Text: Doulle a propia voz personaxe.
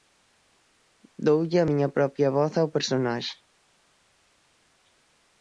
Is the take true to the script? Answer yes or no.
no